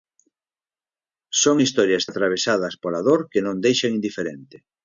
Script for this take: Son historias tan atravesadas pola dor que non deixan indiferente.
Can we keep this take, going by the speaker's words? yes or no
no